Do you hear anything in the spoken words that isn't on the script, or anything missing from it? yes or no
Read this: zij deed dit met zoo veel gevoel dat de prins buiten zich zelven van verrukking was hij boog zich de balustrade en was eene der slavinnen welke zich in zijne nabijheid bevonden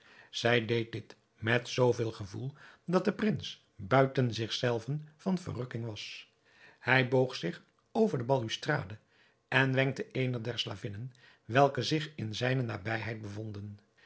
yes